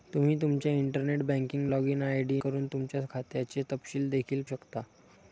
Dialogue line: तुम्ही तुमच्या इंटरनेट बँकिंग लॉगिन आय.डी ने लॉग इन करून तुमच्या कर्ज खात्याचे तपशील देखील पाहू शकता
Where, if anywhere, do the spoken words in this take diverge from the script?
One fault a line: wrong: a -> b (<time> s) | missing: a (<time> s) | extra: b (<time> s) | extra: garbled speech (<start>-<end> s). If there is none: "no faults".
missing: ने लॉग इन (2.4 s)
missing: कर्ज (3.0 s)
missing: पाहू (4.4 s)